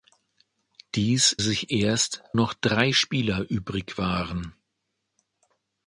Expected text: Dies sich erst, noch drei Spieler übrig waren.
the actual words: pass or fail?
pass